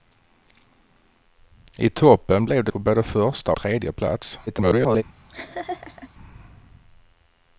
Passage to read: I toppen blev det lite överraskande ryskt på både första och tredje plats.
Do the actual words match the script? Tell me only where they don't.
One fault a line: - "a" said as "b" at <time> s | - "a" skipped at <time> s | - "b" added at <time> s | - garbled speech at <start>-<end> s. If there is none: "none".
- "lite överraskande ryskt" skipped at 2.7 s
- "och" skipped at 3.5 s
- garbled speech at 4.5-5.0 s